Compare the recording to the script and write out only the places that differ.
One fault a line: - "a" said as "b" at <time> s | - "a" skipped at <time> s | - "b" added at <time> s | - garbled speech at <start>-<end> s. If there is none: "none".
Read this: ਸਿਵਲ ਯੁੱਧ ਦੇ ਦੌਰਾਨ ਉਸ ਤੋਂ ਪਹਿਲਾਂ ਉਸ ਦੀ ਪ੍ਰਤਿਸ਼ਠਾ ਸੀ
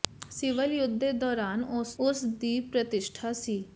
- "ਤੋਂ ਪਹਿਲਾਂ" skipped at 1.9 s